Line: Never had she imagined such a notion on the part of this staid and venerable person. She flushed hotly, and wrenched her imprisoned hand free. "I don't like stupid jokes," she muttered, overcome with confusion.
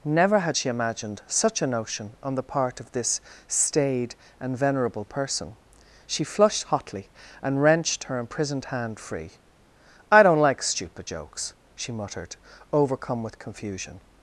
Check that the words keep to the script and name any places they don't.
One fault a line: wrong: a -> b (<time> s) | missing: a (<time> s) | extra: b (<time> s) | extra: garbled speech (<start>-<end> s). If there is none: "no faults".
no faults